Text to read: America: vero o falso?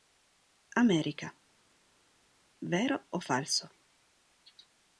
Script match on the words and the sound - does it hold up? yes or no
yes